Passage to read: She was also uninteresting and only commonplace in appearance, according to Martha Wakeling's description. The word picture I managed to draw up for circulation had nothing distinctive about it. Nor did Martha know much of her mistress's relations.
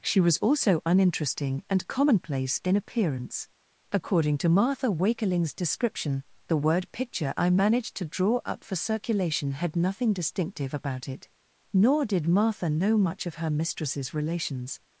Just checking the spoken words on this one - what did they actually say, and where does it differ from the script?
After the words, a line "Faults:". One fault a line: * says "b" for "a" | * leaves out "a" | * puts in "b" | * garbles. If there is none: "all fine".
She was also uninteresting and commonplace in appearance, according to Martha Wakeling's description. The word picture I managed to draw up for circulation had nothing distinctive about it. Nor did Martha know much of her mistress's relations.
Faults:
* leaves out "only"